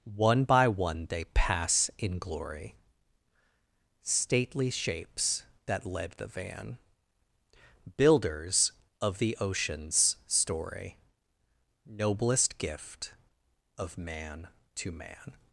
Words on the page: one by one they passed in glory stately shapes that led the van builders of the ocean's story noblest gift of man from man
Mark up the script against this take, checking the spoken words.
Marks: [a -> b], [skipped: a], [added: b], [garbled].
one by one they [passed -> pass] in glory stately shapes that led the van builders of the ocean's story noblest gift of man [from -> to] man